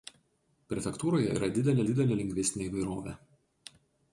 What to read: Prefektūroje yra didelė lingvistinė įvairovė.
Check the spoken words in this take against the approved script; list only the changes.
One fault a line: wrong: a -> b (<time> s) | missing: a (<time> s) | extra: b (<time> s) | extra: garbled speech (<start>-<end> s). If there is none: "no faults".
extra: didelė (1.9 s)